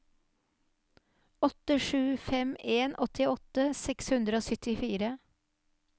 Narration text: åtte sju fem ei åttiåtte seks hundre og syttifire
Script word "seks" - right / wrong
right